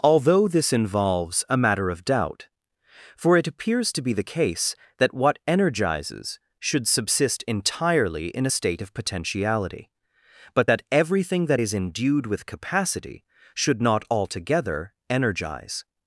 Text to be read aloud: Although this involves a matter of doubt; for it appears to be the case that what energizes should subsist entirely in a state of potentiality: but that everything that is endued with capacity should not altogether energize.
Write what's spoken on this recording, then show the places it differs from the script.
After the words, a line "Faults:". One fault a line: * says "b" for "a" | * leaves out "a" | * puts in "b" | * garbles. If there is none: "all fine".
Although this involves a matter of doubt; for it appears to be the case that what energizes should subsist entirely in a state of potentiality: but that everything that is endued with capacity should not altogether energize.
Faults:
all fine